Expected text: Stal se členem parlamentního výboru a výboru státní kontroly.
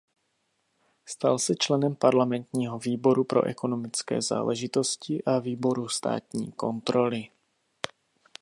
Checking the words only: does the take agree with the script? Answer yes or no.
no